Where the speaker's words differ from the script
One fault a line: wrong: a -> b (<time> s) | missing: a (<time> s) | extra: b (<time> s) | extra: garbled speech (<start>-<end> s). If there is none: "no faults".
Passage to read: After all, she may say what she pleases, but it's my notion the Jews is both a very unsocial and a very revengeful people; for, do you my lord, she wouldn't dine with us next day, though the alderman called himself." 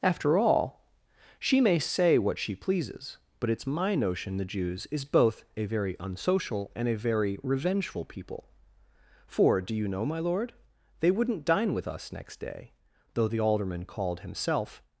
extra: know (9.9 s)
wrong: she -> they (11.0 s)